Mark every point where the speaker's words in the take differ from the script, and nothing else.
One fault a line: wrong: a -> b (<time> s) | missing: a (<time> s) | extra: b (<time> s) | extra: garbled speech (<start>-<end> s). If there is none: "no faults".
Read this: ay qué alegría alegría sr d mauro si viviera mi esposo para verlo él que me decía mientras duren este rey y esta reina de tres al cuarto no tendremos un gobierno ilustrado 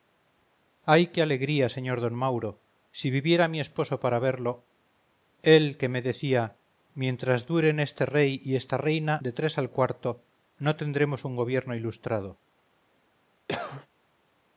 missing: alegría (1.6 s)